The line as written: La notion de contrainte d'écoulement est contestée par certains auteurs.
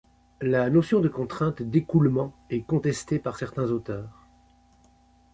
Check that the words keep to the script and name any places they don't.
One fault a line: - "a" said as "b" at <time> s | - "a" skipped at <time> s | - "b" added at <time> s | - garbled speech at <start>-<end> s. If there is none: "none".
none